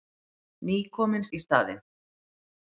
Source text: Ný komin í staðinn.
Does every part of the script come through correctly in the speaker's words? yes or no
yes